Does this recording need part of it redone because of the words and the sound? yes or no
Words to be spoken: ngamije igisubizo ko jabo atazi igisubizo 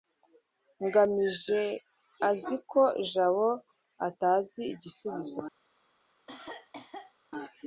yes